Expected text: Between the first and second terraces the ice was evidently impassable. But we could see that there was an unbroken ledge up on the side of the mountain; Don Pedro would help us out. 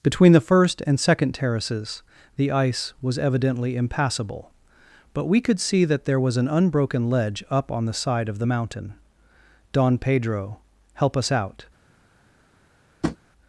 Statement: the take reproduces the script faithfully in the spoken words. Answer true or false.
false